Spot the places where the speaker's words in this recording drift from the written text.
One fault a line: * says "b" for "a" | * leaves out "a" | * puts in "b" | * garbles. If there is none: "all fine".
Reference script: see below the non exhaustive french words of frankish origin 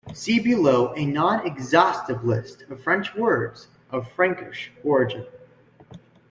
* says "a" for "the"
* puts in "list of"